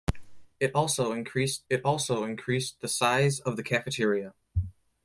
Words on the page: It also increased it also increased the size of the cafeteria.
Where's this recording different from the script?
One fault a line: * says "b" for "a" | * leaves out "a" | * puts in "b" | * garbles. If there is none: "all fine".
all fine